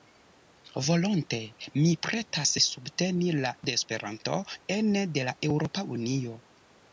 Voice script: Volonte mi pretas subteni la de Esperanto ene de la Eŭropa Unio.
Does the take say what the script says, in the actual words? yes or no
yes